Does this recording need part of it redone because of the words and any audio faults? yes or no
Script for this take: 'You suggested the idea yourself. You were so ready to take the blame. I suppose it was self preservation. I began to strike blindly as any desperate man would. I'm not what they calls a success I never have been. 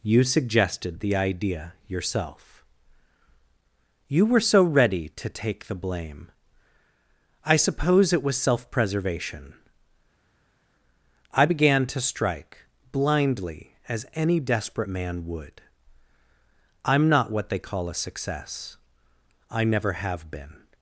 yes